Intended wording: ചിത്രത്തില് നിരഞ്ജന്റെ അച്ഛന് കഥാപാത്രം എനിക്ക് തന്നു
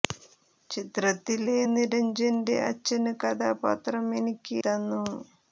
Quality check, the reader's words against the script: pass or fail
pass